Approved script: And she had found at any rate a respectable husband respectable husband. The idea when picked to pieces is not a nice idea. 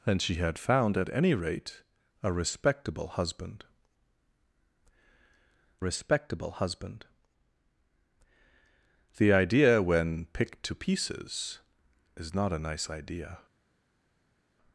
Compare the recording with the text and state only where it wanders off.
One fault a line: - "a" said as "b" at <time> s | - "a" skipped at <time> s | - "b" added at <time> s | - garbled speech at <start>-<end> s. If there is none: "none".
none